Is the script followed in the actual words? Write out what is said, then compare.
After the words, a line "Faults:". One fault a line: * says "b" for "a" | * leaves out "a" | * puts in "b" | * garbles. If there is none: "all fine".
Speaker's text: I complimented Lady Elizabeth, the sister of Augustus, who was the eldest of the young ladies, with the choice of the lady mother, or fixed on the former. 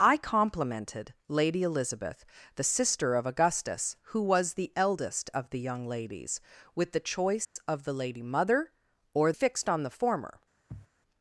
I complimented Lady Elizabeth, the sister of Augustus, who was the eldest of the young ladies, with the choice of the lady mother, or fixed on the former.
Faults:
all fine